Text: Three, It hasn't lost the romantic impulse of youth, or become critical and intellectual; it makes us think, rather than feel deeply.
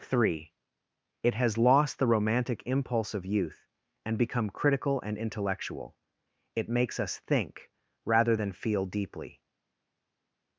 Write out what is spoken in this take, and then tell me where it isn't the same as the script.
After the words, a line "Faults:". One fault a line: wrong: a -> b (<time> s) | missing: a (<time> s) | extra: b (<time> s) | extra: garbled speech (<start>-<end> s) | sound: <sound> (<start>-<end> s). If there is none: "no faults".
Three, It has lost the romantic impulse of youth, and become critical and intellectual; it makes us think, rather than feel deeply.
Faults:
wrong: hasn't -> has (1.4 s)
wrong: or -> and (4.0 s)